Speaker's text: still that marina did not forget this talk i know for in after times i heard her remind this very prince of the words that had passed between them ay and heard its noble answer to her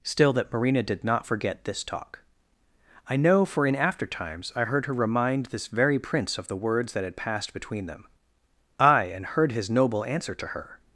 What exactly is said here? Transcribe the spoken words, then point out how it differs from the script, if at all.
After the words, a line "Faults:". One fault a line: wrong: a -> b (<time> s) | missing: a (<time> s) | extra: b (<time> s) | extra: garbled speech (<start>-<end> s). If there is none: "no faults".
still that marina did not forget this talk i know for in after times i heard her remind this very prince of the words that had passed between them ay and heard his noble answer to her
Faults:
wrong: its -> his (9.5 s)